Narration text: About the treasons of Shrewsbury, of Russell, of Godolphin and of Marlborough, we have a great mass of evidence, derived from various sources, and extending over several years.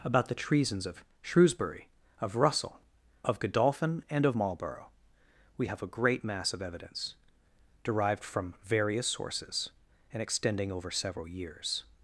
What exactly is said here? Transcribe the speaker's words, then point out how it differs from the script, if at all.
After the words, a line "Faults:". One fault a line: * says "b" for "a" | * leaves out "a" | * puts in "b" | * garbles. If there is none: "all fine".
About the treasons of Shrewsbury, of Russell, of Godolphin and of Marlborough, we have a great mass of evidence, derived from various sources, and extending over several years.
Faults:
all fine